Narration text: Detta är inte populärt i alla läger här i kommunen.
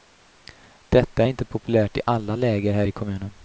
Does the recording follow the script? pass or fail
pass